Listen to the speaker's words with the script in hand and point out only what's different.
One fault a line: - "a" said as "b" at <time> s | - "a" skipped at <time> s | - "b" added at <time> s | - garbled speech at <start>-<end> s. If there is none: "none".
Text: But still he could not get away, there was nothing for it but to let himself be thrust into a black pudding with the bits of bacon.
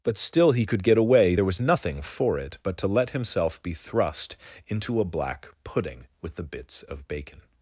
- "not" skipped at 0.8 s